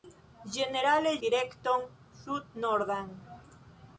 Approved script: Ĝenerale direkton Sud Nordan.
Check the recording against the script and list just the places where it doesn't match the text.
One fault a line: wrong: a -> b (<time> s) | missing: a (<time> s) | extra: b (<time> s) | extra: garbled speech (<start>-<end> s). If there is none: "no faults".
no faults